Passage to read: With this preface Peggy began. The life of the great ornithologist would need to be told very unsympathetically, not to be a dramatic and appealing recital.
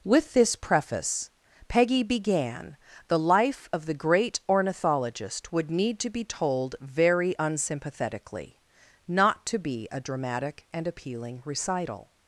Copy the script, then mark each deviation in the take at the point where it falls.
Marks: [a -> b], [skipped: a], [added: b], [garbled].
With this preface Peggy began. The life of the great ornithologist would need to be told very unsympathetically, not to be a dramatic and appealing recital.